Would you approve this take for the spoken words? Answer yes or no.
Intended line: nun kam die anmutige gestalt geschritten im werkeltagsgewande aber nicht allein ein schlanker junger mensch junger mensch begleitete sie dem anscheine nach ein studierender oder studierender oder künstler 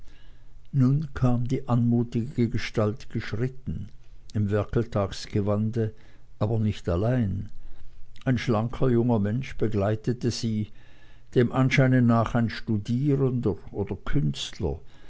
no